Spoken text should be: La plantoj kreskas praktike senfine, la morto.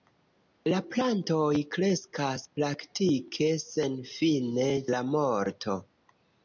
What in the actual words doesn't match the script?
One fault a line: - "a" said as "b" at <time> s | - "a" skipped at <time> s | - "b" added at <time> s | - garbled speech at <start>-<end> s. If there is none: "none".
none